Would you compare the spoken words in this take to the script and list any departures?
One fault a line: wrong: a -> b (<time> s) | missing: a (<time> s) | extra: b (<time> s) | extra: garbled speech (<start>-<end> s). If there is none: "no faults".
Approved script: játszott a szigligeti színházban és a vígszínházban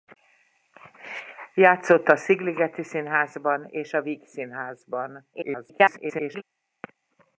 extra: garbled speech (5.3-6.4 s)